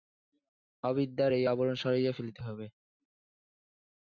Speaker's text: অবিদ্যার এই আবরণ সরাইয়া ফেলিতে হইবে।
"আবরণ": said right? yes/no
yes